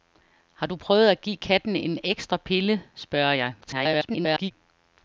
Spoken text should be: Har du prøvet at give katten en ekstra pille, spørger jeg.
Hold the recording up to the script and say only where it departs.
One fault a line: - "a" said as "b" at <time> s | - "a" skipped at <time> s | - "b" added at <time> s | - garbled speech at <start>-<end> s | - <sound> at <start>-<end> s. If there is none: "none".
- garbled speech at 3.6-4.5 s